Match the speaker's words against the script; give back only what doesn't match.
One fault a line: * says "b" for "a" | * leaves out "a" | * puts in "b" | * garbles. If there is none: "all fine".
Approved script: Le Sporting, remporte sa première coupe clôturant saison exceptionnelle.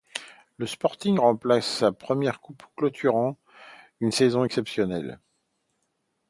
* puts in "une"